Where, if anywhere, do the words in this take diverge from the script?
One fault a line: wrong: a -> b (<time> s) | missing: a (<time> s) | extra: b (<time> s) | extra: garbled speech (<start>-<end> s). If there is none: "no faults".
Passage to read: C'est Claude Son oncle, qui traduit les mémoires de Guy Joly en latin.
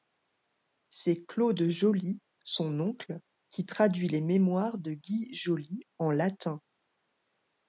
extra: Joly (1.7 s)